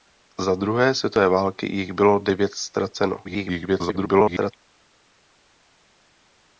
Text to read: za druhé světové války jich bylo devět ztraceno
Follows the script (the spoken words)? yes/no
no